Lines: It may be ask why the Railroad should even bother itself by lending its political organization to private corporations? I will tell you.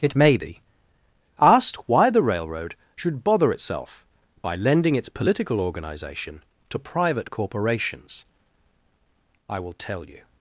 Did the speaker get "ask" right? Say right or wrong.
wrong